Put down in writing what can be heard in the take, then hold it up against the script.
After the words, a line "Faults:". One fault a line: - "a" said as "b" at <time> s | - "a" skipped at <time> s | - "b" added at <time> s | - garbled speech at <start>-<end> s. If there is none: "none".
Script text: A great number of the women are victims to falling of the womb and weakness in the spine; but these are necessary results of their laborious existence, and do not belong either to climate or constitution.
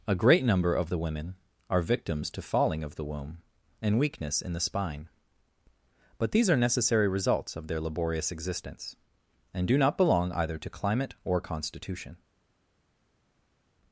A great number of the women are victims to falling of the womb and weakness in the spine; but these are necessary results of their laborious existence, and do not belong either to climate or constitution.
Faults:
none